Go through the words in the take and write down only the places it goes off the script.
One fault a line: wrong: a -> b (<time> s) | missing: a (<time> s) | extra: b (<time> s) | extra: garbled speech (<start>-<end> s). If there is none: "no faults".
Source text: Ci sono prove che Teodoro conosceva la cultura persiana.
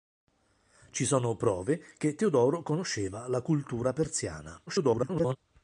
extra: garbled speech (4.7-5.4 s)